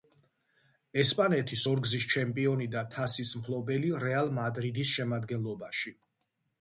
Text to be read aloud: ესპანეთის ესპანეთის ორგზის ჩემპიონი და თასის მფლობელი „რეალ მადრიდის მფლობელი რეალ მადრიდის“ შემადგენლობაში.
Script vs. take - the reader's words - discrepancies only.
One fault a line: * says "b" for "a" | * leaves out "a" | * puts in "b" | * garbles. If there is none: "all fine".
* leaves out "ესპანეთის"
* leaves out "მფლობელი რეალ მადრიდის"